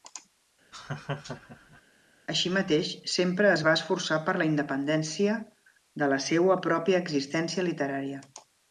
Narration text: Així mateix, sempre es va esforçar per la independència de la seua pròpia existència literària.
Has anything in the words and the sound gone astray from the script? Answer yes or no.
yes